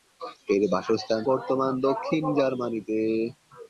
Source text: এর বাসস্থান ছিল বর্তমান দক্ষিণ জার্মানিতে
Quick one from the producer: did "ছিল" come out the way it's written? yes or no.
no